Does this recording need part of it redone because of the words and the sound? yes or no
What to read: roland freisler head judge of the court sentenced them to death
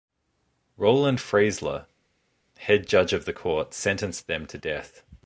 no